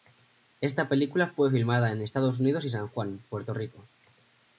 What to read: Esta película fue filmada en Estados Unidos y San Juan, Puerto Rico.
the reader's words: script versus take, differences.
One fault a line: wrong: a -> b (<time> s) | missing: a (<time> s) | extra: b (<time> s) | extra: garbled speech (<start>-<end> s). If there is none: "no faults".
no faults